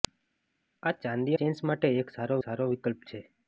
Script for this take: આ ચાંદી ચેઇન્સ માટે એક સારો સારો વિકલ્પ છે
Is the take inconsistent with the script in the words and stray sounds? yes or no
no